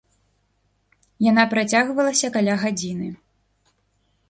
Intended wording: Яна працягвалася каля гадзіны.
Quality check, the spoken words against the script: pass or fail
pass